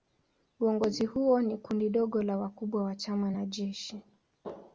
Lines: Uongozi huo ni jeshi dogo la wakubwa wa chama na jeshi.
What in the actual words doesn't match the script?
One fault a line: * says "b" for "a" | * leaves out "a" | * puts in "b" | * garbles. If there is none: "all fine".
* says "kundi" for "jeshi"